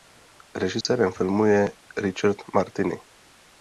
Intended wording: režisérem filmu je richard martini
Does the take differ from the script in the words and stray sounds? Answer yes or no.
yes